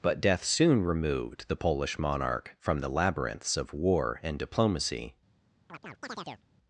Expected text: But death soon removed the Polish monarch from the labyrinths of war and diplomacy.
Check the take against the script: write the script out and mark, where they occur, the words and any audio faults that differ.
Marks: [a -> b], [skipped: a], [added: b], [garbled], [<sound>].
But death soon removed the Polish monarch from the labyrinths of war and diplomacy. [chirp]